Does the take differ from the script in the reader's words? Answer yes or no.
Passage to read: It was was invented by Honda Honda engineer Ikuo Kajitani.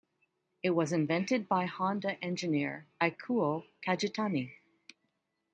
yes